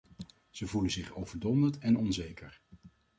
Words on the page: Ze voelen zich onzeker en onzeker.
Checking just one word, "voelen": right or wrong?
right